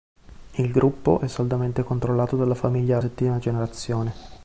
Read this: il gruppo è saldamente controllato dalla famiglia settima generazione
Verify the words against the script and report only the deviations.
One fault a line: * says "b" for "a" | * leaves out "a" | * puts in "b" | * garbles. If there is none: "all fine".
all fine